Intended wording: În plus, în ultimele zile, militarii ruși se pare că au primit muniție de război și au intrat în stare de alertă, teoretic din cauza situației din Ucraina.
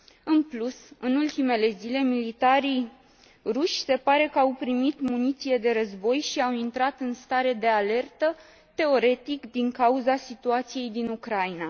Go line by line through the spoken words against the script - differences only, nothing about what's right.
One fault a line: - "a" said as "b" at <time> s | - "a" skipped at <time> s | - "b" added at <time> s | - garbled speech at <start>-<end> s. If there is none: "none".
none